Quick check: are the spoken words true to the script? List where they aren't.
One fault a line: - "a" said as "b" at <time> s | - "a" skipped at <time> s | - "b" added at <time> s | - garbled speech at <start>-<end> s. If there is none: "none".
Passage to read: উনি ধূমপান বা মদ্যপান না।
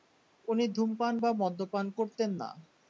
- "করতেন" added at 2.0 s